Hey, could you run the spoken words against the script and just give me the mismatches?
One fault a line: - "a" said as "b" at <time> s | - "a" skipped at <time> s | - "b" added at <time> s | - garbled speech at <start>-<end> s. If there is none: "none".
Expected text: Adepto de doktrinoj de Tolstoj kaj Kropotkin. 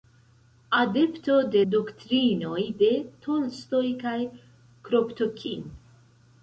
none